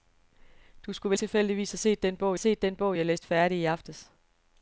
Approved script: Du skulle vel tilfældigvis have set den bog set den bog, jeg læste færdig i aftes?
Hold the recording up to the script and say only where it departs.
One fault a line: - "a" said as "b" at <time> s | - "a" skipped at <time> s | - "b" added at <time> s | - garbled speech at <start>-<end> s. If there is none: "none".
none